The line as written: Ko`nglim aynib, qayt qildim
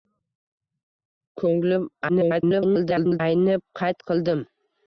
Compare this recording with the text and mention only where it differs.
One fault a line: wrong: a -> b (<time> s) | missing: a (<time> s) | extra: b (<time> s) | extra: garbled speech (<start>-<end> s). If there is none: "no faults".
extra: garbled speech (2.1-3.2 s)